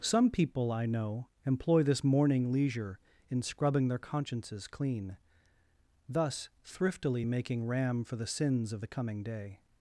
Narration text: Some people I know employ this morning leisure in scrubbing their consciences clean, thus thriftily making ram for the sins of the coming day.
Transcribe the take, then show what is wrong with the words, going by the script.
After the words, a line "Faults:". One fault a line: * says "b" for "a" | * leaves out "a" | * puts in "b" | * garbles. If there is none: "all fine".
Some people I know employ this morning leisure in scrubbing their consciences clean, thus thriftily making ram for the sins of the coming day.
Faults:
all fine